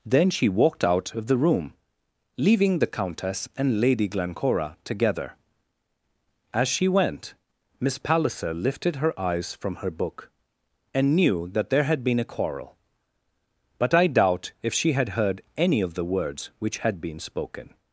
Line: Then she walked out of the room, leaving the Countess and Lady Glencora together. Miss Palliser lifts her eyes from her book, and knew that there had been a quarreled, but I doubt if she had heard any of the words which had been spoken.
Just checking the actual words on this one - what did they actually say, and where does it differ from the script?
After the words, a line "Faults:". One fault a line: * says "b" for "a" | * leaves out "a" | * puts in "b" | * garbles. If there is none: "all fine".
Then she walked out of the room, leaving the Countess and Lady Glencora together. As she went Miss Palliser lifted her eyes from her book, and knew that there had been a quarrel, but I doubt if she had heard any of the words which had been spoken.
Faults:
* puts in "As she went"
* says "lifted" for "lifts"
* says "quarrel" for "quarreled"